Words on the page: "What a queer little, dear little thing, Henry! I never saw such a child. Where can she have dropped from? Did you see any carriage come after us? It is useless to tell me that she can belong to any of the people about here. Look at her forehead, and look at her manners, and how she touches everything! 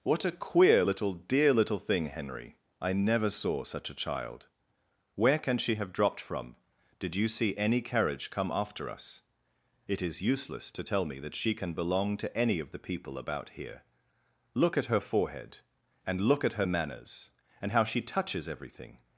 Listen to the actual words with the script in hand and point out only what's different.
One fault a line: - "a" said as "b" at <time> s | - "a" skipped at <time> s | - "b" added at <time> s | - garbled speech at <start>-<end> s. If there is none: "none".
none